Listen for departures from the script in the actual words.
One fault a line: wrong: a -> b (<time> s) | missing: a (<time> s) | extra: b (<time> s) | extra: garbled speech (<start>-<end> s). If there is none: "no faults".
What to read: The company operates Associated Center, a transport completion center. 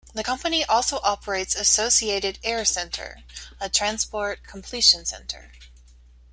extra: also (0.6 s)
extra: Air (2.4 s)